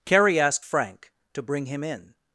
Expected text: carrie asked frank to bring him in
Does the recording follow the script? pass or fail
pass